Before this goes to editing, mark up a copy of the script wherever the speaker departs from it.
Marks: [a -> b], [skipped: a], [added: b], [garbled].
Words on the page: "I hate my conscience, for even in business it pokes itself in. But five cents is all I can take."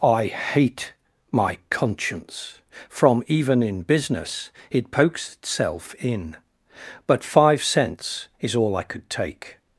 "I hate my conscience, [for -> from] even in business it pokes itself in. But five cents is all I [can -> could] take."